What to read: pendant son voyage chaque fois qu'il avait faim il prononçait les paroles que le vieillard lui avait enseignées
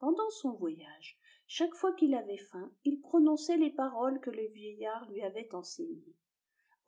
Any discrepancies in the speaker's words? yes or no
no